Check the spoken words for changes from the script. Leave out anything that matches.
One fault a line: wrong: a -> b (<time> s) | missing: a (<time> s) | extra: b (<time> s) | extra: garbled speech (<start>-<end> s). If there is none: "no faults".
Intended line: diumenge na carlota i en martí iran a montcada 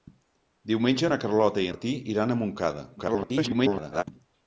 missing: en (1.7 s)
extra: garbled speech (3.0-4.0 s)